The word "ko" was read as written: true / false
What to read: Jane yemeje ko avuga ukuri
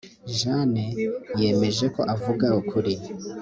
true